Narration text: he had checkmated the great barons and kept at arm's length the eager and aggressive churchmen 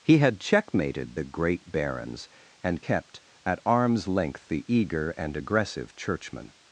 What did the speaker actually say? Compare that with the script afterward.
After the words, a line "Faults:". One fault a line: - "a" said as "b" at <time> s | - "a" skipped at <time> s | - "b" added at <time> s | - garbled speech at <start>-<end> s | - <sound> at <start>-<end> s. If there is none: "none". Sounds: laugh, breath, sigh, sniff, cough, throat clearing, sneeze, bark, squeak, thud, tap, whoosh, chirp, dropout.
he had checkmated the great barons and kept at arm's length the eager and aggressive churchmen
Faults:
none